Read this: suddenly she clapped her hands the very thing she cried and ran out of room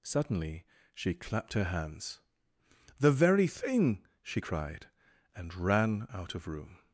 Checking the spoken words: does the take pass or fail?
pass